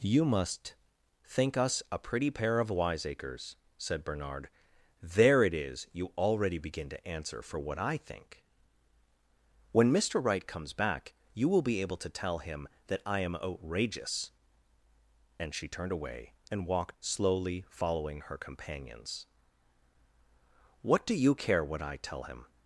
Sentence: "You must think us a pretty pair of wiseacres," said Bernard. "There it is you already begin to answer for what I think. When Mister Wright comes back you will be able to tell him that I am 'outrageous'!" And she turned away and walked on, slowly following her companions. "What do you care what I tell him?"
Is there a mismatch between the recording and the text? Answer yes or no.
yes